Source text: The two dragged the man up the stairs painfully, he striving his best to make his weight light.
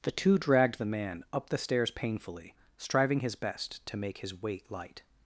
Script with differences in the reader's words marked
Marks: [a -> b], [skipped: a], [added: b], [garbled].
The two dragged the man up the stairs painfully, [skipped: he] striving his best to make his weight light.